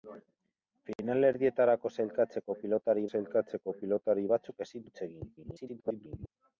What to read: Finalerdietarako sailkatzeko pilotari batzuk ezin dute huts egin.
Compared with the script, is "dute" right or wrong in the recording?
wrong